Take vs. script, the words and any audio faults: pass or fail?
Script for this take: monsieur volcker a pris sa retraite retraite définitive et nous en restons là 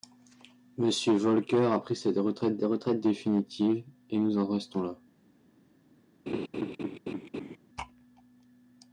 fail